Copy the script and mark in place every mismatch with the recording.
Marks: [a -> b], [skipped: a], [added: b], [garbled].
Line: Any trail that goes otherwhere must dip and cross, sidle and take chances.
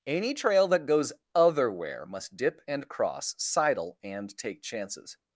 Any trail that goes otherwhere must dip and cross, sidle and take chances.